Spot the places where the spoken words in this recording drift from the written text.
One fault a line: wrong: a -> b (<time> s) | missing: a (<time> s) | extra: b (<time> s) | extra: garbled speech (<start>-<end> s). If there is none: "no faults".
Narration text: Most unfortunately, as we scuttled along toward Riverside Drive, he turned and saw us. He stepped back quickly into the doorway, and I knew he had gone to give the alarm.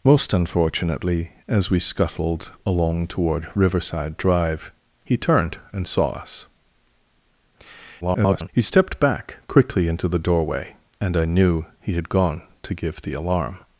extra: garbled speech (8.0-8.5 s)